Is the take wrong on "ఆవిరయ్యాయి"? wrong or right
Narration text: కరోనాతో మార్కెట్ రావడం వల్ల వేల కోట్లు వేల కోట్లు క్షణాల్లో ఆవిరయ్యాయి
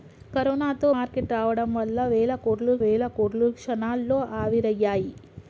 right